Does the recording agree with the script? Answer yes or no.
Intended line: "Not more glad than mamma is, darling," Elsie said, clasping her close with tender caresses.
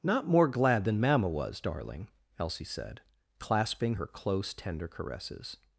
no